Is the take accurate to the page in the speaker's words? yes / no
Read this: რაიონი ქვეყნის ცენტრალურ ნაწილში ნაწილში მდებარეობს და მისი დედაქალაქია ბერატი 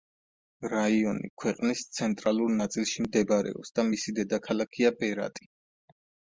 no